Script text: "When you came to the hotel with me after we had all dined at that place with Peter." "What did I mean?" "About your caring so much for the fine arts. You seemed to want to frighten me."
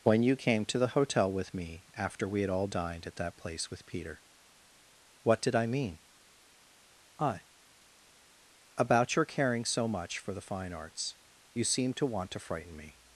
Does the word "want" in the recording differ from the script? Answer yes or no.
no